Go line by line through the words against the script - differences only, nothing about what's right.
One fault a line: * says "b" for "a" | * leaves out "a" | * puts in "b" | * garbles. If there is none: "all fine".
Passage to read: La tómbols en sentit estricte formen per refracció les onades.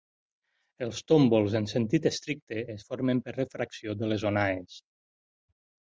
* says "Els" for "La"
* puts in "es"
* puts in "de"